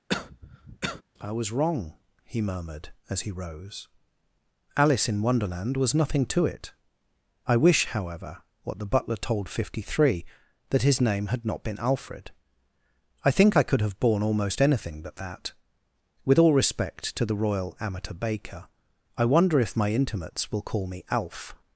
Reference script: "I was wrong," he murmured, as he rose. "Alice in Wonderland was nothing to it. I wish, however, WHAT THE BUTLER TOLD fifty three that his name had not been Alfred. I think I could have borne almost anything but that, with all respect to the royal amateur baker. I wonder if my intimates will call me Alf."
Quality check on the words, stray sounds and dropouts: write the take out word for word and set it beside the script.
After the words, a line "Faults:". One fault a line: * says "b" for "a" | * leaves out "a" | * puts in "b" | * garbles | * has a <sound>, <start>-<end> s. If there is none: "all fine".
"I was wrong," he murmured, as he rose. "Alice in Wonderland was nothing to it. I wish, however, WHAT THE BUTLER TOLD fifty three that his name had not been Alfred. I think I could have borne almost anything but that, with all respect to the royal amateur baker. I wonder if my intimates will call me Alf."
Faults:
* has a cough, 0.1-1.0 s